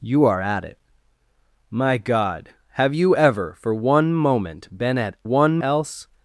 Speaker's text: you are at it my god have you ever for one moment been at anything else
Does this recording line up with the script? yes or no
no